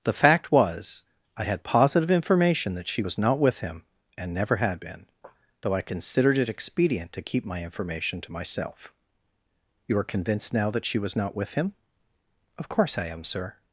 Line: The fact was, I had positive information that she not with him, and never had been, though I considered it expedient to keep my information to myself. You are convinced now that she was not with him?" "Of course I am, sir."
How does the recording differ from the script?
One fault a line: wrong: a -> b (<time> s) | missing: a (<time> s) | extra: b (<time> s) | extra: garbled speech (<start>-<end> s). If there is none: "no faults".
extra: was (3.0 s)